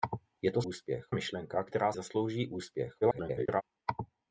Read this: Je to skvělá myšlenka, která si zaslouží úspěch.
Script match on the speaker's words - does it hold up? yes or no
no